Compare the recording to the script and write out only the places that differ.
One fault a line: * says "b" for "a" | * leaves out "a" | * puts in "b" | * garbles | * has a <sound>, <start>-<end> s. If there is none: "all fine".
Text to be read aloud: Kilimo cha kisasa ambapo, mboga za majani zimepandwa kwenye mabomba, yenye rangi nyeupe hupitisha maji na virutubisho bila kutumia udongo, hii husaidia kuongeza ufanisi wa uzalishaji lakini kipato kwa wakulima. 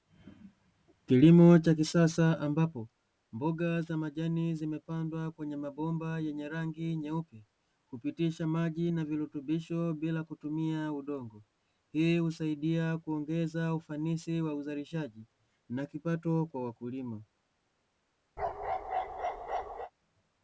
* says "na" for "lakini"
* has a bark, 18.4-19.9 s